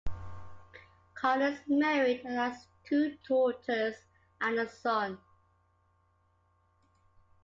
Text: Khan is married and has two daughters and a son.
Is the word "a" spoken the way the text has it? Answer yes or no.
yes